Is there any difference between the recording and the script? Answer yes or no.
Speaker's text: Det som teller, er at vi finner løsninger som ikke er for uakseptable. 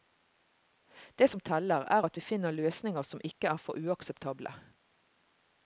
no